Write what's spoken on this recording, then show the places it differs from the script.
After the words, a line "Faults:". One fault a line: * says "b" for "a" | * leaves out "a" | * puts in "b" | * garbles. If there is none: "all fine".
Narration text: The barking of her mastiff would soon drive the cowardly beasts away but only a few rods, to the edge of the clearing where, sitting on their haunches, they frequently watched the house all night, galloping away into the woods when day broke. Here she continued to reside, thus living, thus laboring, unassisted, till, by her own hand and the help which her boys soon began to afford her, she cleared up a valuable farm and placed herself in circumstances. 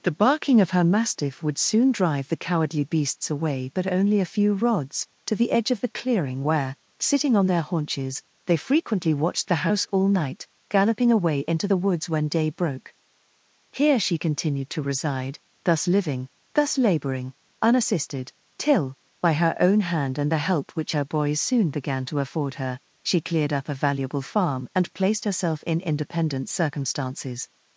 The barking of her mastiff would soon drive the cowardly beasts away but only a few rods, to the edge of the clearing where, sitting on their haunches, they frequently watched the house all night, galloping away into the woods when day broke. Here she continued to reside, thus living, thus laboring, unassisted, till, by her own hand and the help which her boys soon began to afford her, she cleared up a valuable farm and placed herself in independent circumstances.
Faults:
* puts in "independent"